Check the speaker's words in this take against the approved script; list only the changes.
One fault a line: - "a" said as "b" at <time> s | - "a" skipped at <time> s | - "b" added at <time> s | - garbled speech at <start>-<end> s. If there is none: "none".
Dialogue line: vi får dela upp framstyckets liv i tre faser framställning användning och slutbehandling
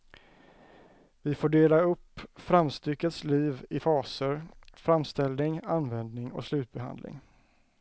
- "tre" skipped at 3.8 s